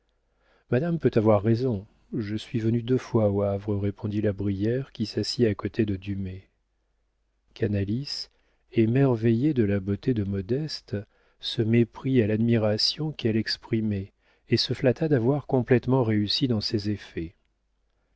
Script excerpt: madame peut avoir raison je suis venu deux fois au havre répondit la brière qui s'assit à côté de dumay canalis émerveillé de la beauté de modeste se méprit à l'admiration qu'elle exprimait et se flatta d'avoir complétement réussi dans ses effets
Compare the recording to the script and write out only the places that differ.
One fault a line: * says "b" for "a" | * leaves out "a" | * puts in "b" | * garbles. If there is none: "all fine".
all fine